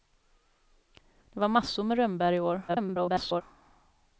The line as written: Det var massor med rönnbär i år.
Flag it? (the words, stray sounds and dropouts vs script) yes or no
yes